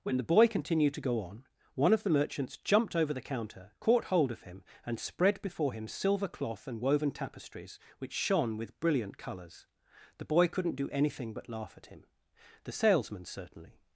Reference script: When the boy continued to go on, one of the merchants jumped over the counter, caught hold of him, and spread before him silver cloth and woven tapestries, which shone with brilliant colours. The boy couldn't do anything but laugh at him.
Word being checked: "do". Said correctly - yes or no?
yes